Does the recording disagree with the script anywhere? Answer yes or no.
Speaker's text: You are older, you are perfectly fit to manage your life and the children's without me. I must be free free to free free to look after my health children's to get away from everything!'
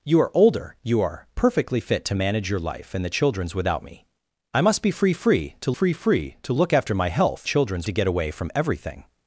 no